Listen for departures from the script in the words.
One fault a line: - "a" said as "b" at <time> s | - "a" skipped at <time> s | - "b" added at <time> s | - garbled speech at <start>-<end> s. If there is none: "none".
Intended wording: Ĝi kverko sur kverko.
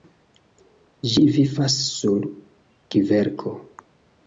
- "kverko" said as "vivas" at 1.4 s